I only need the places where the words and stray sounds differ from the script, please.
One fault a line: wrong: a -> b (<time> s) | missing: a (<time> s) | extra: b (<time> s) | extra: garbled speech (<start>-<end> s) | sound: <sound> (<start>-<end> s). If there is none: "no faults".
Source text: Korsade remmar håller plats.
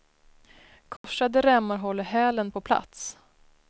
sound: dropout (1.0-1.0 s)
extra: hälen på (2.0 s)